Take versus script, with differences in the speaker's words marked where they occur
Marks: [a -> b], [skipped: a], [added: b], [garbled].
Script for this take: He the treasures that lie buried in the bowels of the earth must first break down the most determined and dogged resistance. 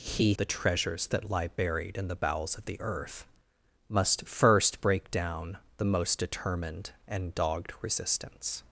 He the treasures that lie buried in the bowels of the earth must first break down the most determined and dogged resistance.